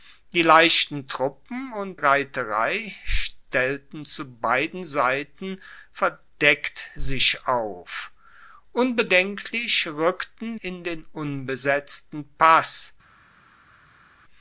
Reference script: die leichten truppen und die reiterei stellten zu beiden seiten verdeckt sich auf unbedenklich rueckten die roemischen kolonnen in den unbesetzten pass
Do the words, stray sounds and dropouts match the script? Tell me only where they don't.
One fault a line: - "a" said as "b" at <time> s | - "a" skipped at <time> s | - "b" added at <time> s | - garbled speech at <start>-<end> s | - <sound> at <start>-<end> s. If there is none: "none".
- "die" skipped at 2.0 s
- "die roemischen kolonnen" skipped at 10.6 s